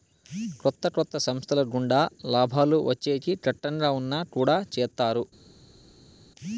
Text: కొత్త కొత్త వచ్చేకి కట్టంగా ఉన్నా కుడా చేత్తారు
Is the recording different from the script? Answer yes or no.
yes